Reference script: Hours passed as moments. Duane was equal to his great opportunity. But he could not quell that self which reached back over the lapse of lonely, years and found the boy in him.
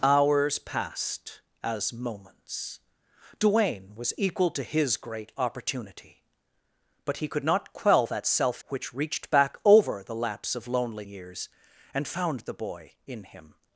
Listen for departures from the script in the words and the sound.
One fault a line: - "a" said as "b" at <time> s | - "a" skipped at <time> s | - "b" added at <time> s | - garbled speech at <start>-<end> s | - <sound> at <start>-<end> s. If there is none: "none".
none